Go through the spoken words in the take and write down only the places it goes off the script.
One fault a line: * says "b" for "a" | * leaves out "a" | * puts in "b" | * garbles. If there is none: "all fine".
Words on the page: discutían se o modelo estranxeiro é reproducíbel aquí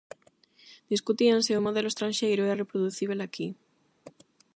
all fine